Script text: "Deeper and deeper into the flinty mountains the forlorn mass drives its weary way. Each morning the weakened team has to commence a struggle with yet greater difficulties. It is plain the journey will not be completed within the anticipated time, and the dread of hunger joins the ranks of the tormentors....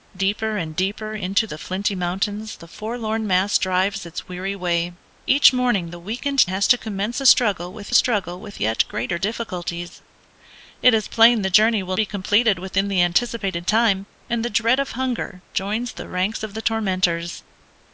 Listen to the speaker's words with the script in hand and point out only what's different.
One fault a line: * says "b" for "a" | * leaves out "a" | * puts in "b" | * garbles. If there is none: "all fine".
* leaves out "team"
* puts in "struggle with"
* leaves out "not"